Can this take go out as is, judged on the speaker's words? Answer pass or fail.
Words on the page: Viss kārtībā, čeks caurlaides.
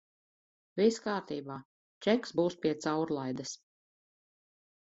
fail